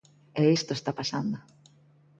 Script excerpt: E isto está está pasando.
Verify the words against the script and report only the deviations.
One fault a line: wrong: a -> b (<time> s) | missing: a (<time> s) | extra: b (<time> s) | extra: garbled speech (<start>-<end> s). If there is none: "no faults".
missing: está (0.9 s)